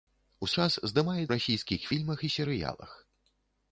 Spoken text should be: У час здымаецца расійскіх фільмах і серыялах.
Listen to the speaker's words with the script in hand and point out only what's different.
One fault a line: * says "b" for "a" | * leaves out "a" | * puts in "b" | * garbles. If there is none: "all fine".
all fine